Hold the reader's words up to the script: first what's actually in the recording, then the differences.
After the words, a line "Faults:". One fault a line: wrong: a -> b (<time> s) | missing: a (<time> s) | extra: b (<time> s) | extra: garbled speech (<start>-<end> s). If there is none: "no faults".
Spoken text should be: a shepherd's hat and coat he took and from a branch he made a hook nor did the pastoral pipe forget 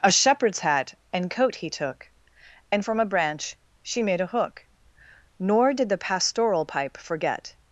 a shepherd's hat and coat he took and from a branch she made a hook nor did the pastoral pipe forget
Faults:
wrong: he -> she (3.8 s)